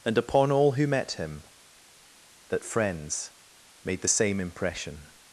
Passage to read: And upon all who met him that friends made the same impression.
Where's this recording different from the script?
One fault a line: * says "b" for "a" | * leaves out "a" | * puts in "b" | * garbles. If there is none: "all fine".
all fine